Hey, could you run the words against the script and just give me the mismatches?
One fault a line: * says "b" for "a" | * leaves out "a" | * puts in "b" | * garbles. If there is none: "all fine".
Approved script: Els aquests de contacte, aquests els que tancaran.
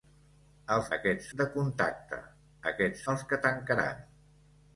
all fine